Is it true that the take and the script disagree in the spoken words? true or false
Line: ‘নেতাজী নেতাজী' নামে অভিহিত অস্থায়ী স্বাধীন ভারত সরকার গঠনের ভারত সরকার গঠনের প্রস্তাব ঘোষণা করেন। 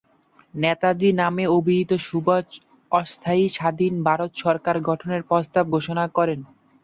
true